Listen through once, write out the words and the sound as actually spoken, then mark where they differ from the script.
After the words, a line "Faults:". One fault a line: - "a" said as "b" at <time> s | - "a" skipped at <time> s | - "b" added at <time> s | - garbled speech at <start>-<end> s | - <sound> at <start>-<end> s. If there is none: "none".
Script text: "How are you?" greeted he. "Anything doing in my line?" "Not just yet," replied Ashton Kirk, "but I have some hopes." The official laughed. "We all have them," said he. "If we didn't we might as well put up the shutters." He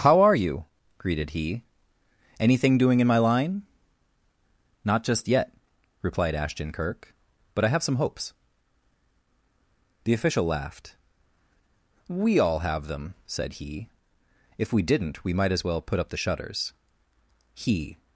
"How are you?" greeted he. "Anything doing in my line?" "Not just yet," replied Ashton Kirk, "but I have some hopes." The official laughed. "We all have them," said he. "If we didn't we might as well put up the shutters." He
Faults:
none